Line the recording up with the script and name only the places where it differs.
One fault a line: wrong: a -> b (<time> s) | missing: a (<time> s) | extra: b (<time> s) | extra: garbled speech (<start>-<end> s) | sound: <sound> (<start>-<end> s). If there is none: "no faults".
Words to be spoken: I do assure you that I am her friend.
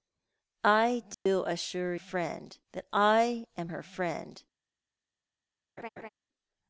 sound: dropout (1.1-1.3 s)
wrong: you -> friend (2.0 s)
sound: laugh (5.8-6.1 s)